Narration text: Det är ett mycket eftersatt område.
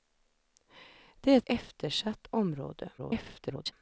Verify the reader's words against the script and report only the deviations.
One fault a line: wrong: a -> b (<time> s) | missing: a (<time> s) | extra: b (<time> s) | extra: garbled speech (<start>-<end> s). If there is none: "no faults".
missing: mycket (1.5 s)
extra: garbled speech (3.0-3.7 s)